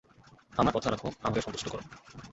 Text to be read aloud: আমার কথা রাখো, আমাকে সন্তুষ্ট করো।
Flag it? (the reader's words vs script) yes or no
no